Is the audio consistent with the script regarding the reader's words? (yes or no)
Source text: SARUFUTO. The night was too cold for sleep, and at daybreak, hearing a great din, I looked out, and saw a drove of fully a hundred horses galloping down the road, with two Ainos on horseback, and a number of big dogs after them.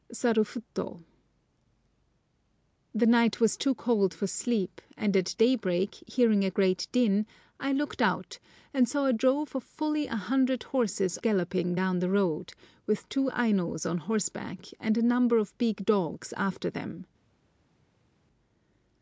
yes